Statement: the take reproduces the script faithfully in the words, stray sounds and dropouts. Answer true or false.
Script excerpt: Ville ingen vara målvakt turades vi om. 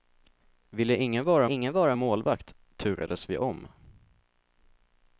false